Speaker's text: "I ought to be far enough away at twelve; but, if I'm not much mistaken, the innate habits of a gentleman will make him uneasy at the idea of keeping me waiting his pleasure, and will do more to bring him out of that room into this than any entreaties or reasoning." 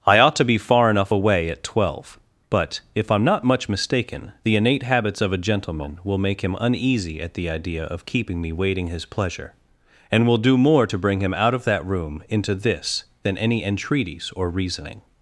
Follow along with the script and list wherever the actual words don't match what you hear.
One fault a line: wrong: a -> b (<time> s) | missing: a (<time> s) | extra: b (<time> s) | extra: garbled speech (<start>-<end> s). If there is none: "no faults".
no faults